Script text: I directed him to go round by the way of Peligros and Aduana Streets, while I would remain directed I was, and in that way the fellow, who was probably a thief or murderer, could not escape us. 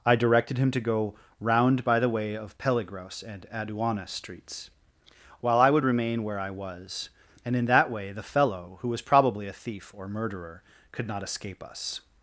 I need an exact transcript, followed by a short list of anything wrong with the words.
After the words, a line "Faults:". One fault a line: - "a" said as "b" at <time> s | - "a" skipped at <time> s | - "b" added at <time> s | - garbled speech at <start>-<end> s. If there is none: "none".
I directed him to go round by the way of Peligros and Aduana Streets, while I would remain where I was, and in that way the fellow, who was probably a thief or murderer, could not escape us.
Faults:
- "directed" said as "where" at 6.2 s